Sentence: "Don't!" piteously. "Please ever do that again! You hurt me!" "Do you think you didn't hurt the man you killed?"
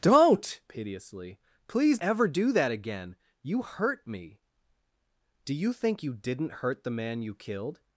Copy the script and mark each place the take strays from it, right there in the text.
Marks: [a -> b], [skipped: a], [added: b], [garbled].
"Don't!" piteously. "Please ever do that again! You hurt me!" "Do you think you didn't hurt the man you killed?"